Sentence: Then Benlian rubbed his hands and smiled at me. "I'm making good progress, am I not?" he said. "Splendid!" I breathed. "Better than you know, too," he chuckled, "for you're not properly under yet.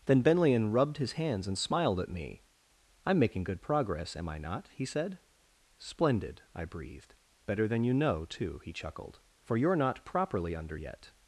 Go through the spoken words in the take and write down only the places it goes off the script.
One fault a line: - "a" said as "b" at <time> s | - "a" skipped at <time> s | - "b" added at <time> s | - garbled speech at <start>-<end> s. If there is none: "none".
none